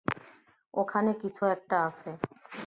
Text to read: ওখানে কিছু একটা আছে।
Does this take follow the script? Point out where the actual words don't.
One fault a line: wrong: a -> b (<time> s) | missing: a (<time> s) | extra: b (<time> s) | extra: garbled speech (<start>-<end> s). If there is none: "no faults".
no faults